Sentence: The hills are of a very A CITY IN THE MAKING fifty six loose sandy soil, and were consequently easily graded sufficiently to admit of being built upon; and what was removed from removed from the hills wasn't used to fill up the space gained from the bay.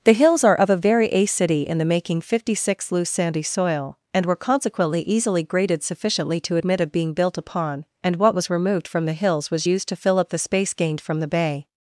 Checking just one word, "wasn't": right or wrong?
wrong